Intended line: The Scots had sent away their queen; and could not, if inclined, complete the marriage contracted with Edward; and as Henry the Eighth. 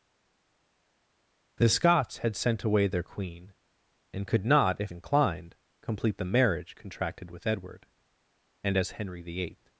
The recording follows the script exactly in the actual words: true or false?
true